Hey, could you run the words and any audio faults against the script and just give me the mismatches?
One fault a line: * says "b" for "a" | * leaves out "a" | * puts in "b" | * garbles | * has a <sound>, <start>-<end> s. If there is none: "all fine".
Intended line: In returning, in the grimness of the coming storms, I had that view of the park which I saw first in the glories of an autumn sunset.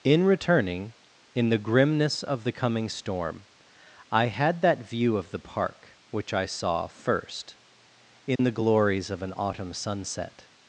* says "storm" for "storms"
* has a dropout, 8.4-8.4 s